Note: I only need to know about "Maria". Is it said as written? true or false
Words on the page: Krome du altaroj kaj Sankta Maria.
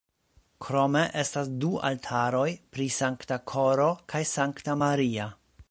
true